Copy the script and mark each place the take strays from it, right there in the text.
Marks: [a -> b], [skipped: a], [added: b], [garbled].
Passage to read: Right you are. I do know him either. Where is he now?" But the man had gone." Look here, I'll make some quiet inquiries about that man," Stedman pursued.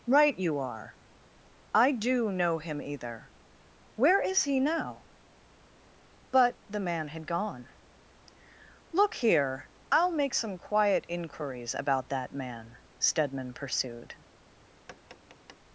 Right you are. I do know him either. Where is he now?" But the man had gone." Look here, I'll make some quiet inquiries about that man," Stedman pursued.